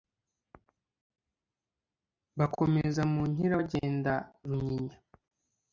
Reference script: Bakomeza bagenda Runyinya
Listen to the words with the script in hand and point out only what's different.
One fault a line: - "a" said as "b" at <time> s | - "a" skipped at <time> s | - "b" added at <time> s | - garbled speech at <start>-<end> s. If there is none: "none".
- "mu Nkira" added at 3.1 s